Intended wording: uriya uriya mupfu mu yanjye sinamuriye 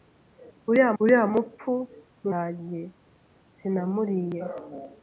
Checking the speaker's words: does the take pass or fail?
pass